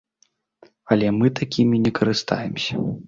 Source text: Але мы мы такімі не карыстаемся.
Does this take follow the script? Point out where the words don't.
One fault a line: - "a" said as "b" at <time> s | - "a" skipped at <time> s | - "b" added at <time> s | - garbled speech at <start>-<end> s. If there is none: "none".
- "мы" skipped at 1.3 s